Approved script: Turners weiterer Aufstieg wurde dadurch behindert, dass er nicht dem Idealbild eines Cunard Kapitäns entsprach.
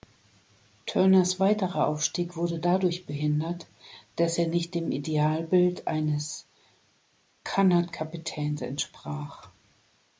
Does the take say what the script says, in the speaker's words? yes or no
yes